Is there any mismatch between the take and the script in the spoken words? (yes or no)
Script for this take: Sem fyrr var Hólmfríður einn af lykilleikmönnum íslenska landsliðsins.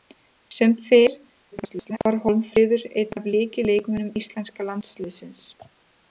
yes